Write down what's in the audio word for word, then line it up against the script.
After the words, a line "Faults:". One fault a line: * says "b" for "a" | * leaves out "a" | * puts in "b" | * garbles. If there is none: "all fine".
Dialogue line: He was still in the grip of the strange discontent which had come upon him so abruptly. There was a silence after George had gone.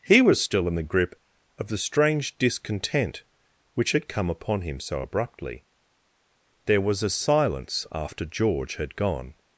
He was still in the grip of the strange discontent which had come upon him so abruptly. There was a silence after George had gone.
Faults:
all fine